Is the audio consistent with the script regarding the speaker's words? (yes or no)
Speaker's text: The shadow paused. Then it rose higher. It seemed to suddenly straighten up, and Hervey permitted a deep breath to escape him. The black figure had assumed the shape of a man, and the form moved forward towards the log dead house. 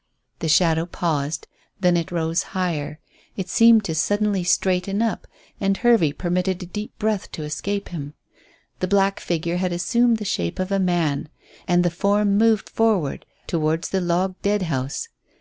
yes